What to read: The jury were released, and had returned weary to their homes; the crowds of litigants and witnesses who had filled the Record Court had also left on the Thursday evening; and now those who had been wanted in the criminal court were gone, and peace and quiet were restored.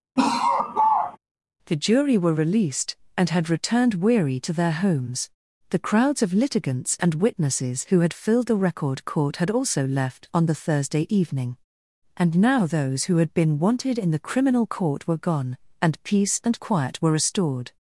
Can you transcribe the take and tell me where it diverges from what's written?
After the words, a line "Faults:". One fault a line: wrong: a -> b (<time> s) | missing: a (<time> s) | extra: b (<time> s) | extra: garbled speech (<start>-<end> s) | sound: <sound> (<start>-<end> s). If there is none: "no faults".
The jury were released, and had returned weary to their homes; the crowds of litigants and witnesses who had filled the Record Court had also left on the Thursday evening; and now those who had been wanted in the criminal court were gone, and peace and quiet were restored.
Faults:
sound: laugh (0.2-1.2 s)